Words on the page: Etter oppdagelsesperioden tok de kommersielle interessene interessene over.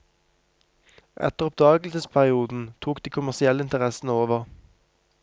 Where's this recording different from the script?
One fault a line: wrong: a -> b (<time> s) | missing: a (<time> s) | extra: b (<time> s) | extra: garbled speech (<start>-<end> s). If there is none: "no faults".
missing: interessene (4.1 s)